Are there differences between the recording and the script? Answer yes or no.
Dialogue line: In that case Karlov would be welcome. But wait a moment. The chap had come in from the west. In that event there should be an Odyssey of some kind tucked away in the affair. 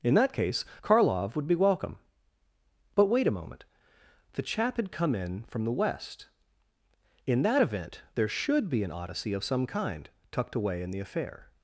no